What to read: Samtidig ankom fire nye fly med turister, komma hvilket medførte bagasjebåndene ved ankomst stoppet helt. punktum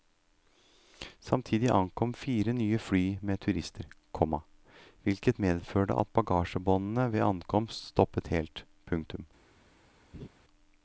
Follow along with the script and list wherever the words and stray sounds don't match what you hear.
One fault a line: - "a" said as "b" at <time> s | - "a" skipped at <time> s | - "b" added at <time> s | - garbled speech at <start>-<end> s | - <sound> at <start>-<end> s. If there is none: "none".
- "at" added at 6.0 s
- laugh at 10.1-10.3 s